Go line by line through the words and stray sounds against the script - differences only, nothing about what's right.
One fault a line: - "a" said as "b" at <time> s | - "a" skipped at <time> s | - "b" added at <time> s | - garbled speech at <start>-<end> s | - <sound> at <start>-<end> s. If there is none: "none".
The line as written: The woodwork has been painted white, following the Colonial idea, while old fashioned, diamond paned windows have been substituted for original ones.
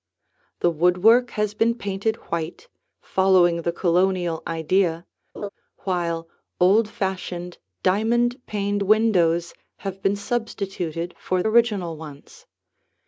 - laugh at 5.3-5.5 s